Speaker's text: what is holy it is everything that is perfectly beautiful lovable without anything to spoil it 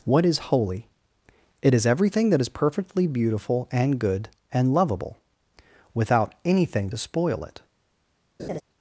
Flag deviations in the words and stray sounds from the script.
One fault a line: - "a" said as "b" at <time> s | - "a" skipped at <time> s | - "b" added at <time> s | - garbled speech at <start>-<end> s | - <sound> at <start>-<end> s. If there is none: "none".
- "and good and" added at 3.7 s
- laugh at 8.4-8.6 s